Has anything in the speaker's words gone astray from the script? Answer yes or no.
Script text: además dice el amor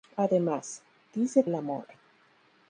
no